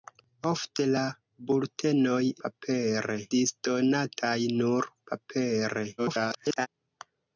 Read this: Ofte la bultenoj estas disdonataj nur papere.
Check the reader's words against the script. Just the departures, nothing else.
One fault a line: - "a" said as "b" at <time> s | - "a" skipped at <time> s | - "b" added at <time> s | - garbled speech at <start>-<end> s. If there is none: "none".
- "estas" said as "papere" at 2.5 s
- garbled speech at 6.0-6.7 s